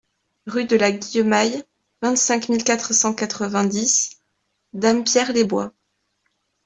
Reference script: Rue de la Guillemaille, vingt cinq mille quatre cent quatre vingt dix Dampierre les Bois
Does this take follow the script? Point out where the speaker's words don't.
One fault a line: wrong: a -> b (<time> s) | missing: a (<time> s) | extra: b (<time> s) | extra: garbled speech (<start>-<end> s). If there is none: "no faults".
no faults